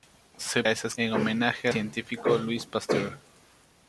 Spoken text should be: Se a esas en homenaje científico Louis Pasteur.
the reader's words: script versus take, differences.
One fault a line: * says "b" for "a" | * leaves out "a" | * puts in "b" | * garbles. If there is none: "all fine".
all fine